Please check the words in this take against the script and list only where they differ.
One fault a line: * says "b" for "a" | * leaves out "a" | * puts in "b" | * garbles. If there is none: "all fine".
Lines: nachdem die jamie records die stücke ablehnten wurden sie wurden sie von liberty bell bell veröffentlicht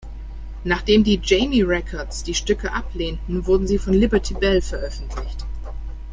* leaves out "wurden sie"
* leaves out "bell"